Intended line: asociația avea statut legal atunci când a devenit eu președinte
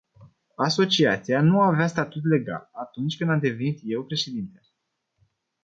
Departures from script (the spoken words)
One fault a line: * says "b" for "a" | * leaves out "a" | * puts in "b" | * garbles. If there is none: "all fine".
* puts in "nu"
* says "am" for "a"